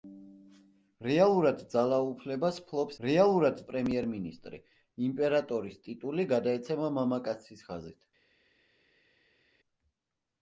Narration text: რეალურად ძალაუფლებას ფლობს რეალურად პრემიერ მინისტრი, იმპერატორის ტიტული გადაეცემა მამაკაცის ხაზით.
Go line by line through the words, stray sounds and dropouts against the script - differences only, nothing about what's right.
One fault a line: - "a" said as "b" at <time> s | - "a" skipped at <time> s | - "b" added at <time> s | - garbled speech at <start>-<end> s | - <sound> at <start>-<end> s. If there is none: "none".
none